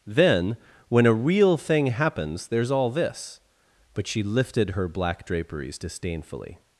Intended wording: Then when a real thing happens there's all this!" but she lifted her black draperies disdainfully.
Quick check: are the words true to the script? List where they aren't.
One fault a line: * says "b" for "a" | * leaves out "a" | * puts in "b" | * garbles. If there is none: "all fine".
all fine